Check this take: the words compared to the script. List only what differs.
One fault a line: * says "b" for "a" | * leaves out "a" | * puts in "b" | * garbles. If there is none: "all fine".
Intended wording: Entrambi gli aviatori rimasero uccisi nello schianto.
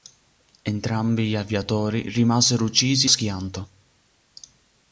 * leaves out "nello"